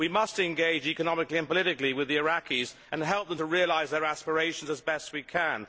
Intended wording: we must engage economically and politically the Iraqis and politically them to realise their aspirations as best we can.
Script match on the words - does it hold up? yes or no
no